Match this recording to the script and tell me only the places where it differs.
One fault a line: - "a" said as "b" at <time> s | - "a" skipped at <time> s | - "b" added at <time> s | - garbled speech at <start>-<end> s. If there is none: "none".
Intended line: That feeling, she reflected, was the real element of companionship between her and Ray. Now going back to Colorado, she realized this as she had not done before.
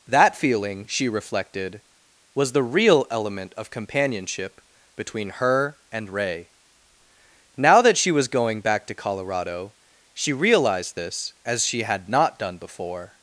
- "that she was" added at 7.8 s